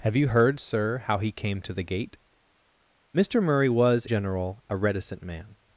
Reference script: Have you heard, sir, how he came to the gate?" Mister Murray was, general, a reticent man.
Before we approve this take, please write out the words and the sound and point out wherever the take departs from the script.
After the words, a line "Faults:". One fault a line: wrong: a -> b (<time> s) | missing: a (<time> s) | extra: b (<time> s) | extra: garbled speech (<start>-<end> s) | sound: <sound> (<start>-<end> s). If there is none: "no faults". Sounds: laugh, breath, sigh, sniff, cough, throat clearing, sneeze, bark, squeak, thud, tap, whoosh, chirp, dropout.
Have you heard, sir, how he came to the gate?" Mister Murray was, general, a reticent man.
Faults:
no faults